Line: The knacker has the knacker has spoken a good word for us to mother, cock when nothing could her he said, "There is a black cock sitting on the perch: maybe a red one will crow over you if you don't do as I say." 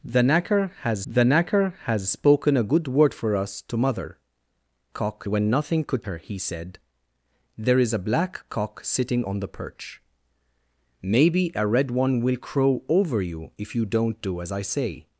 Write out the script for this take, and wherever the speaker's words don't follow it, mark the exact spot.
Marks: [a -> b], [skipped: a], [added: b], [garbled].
The knacker has the knacker has spoken a good word for us to mother, cock when nothing could her he said, "There is a black cock sitting on the perch: maybe a red one will crow over you if you don't do as I say."